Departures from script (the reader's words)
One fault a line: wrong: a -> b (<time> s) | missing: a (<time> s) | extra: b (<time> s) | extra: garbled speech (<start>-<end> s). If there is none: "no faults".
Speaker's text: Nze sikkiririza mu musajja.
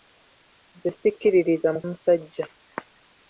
no faults